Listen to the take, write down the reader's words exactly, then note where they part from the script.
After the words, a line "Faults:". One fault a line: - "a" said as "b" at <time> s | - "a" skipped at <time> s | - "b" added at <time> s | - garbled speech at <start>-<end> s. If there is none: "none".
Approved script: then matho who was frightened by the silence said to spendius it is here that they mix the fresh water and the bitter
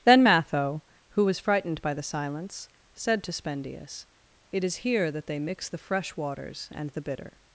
then matho who was frightened by the silence said to spendius it is here that they mix the fresh waters and the bitter
Faults:
- "water" said as "waters" at 6.2 s